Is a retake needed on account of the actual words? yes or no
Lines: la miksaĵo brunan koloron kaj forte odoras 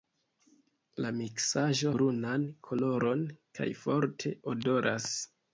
no